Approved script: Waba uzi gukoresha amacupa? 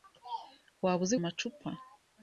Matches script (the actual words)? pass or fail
fail